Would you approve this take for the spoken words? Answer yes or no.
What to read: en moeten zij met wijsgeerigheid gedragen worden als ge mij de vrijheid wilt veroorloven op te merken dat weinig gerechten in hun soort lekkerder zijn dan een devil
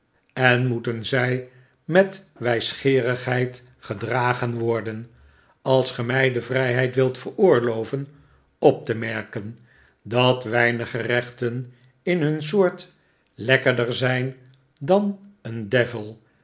yes